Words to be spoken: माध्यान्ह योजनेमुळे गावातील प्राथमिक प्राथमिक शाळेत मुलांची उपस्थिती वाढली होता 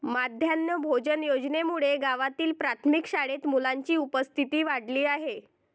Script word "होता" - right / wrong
wrong